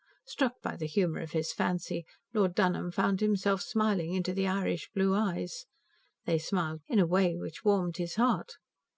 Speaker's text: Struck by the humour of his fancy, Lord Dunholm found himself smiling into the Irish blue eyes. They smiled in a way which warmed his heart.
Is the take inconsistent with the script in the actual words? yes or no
no